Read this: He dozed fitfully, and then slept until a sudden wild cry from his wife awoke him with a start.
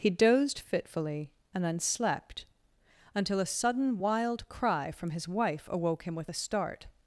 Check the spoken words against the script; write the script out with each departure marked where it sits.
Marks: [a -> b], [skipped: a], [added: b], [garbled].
He dozed fitfully, and then slept until a sudden wild cry from his wife awoke him with a start.